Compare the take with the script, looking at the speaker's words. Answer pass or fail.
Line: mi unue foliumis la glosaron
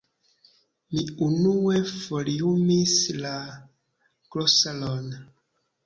pass